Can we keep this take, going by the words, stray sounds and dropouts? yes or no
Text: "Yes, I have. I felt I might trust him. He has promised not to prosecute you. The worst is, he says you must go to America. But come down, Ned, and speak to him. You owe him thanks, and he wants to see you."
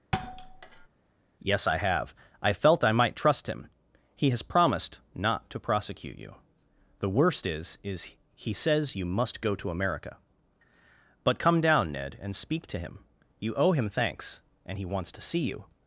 no